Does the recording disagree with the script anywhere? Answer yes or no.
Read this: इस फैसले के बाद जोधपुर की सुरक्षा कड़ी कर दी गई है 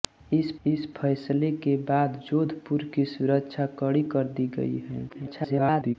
yes